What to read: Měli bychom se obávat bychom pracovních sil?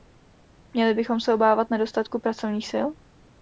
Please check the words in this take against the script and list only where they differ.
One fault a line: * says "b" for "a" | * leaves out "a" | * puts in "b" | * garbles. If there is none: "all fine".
* says "nedostatku" for "bychom"